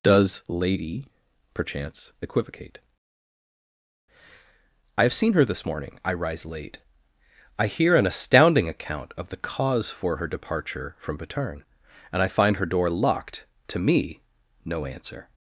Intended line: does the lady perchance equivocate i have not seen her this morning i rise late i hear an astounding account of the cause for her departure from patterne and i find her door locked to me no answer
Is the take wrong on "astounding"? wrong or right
right